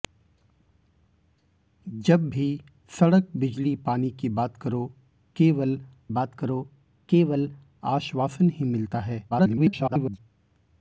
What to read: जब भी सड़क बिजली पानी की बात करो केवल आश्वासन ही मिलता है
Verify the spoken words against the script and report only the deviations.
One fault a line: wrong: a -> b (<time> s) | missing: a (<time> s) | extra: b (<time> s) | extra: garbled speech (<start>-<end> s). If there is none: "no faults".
extra: बात करो केवल (6.1 s)
extra: garbled speech (9.3-10.2 s)